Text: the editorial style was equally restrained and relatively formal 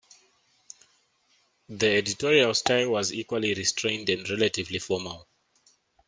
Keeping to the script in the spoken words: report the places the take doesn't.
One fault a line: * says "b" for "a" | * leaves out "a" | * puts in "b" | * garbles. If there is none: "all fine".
all fine